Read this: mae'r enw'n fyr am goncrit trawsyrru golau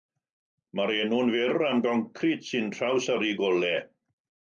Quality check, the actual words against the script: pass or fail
fail